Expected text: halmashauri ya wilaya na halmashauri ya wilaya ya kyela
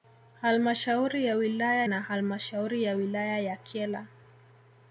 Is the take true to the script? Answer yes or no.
yes